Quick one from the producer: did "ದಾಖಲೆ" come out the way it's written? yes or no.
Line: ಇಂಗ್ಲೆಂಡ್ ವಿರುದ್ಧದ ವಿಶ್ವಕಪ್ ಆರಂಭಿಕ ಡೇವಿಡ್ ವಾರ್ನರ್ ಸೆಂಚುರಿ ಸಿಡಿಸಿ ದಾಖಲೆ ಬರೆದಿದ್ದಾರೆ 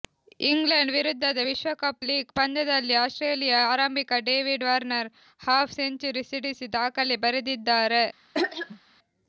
yes